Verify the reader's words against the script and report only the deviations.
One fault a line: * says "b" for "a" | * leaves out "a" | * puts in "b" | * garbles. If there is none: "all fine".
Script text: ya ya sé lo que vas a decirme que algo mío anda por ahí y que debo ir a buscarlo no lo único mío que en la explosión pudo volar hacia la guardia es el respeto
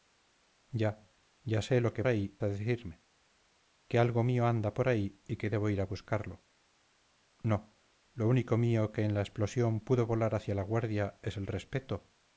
* says "ahí" for "vas"